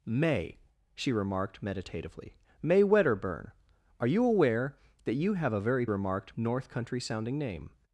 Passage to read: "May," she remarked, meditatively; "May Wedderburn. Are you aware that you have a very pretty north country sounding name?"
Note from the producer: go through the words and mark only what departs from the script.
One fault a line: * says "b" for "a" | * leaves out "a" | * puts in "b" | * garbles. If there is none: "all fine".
* says "remarked" for "pretty"